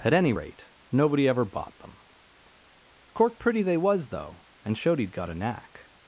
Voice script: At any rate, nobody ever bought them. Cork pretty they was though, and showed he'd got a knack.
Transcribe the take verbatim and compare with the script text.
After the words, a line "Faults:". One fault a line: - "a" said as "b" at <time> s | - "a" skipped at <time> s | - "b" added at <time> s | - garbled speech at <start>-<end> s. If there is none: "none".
At any rate, nobody ever bought them. Cork pretty they was though, and showed he'd got a knack.
Faults:
none